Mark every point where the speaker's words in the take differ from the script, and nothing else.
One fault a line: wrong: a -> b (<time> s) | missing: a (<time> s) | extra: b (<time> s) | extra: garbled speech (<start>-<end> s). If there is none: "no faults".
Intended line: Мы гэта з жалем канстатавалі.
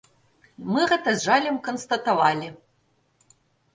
no faults